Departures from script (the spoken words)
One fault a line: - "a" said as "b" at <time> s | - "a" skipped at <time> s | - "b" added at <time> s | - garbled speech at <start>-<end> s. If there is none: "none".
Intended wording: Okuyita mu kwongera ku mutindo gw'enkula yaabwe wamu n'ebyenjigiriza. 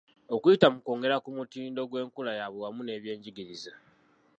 none